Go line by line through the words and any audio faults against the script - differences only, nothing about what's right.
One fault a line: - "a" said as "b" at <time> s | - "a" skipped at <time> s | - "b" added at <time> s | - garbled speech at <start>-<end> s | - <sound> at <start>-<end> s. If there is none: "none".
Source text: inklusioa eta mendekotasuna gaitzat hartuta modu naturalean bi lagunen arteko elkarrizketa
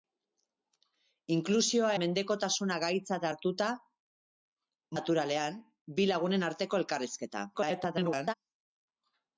- "eta" skipped at 1.9 s
- "modu" skipped at 3.7 s
- garbled speech at 7.5-8.3 s